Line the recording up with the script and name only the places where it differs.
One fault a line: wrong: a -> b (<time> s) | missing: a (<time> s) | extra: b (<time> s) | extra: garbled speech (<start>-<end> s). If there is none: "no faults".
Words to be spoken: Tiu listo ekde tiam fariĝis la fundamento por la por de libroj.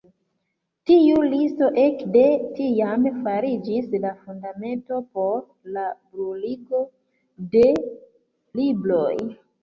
wrong: por -> bruligo (6.2 s)